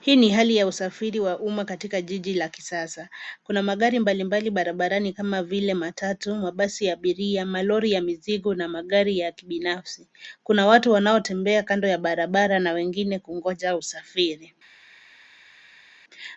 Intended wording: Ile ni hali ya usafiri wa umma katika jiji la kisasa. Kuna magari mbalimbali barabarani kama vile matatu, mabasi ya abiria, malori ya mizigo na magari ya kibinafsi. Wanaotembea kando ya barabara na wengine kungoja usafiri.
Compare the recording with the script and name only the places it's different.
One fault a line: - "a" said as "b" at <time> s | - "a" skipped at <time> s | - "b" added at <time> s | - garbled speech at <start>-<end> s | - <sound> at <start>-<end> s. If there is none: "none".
- "Ile" said as "Hii" at 0.0 s
- "Kuna watu" added at 10.4 s